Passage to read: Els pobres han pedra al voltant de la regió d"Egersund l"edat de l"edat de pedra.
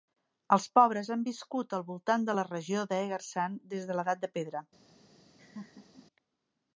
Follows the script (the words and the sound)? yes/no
no